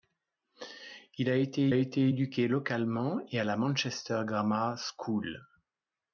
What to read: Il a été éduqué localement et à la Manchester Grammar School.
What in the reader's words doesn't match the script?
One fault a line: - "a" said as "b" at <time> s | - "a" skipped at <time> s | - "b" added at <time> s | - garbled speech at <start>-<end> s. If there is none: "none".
- "été" added at 1.7 s